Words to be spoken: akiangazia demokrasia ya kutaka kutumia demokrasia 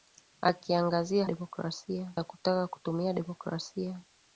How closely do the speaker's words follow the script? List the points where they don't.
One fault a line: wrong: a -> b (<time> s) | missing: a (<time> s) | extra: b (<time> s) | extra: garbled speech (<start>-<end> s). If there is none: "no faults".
no faults